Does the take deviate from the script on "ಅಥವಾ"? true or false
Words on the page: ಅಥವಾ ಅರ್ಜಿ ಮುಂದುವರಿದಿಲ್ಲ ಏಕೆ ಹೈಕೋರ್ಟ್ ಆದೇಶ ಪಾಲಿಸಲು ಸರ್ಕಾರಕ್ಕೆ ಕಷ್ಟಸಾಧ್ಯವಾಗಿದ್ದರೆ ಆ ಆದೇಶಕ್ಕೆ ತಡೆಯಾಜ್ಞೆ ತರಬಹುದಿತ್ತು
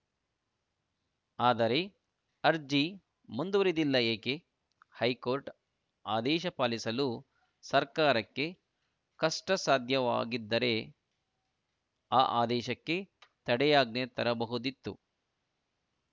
true